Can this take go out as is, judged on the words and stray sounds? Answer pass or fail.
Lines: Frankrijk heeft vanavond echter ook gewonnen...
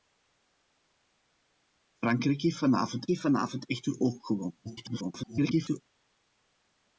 fail